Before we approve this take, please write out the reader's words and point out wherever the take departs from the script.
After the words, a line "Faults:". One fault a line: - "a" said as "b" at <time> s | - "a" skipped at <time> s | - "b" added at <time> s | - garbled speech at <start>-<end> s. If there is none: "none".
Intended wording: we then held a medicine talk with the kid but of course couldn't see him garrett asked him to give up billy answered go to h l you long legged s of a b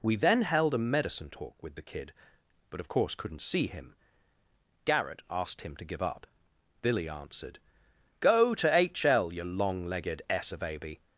we then held a medicine talk with the kid but of course couldn't see him garrett asked him to give up billy answered go to h l you long legged s of a b
Faults:
none